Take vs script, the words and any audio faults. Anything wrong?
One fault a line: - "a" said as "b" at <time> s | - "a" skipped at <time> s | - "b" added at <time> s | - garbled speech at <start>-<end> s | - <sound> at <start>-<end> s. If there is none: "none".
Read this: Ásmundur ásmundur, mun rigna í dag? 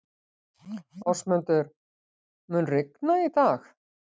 - "ásmundur" skipped at 1.7 s